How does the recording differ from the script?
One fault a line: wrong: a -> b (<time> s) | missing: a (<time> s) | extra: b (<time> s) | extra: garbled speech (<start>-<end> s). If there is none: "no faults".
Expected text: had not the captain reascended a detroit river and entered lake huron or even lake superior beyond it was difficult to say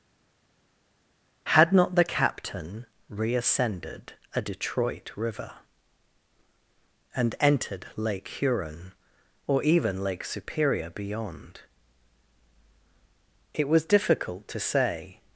no faults